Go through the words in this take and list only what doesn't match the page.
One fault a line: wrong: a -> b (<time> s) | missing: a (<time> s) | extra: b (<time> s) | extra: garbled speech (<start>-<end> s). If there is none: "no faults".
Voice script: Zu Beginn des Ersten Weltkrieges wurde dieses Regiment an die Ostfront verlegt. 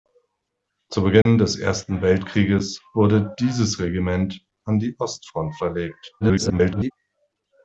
extra: garbled speech (6.2-6.9 s)